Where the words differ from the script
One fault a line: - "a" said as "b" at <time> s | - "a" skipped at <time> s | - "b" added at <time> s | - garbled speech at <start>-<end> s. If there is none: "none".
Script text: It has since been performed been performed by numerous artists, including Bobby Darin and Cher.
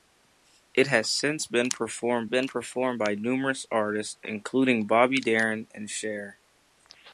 none